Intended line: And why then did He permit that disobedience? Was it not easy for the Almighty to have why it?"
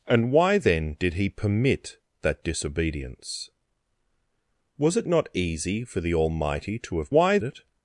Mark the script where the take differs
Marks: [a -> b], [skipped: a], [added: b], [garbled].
And why then did He permit that disobedience? Was it not easy for the Almighty to have why it?"